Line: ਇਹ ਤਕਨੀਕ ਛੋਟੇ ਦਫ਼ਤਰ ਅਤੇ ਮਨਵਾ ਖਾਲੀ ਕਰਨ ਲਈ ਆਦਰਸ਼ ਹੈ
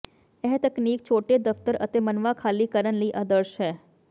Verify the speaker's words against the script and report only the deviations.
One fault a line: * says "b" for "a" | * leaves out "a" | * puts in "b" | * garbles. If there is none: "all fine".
all fine